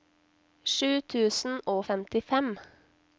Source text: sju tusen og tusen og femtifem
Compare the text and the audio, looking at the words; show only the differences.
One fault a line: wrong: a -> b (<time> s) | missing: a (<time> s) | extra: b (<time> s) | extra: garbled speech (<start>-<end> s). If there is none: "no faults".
missing: tusen og (1.9 s)